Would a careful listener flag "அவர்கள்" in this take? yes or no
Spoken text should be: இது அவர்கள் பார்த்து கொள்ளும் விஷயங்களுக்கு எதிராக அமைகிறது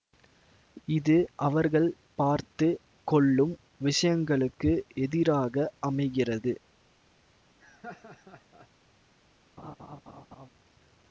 no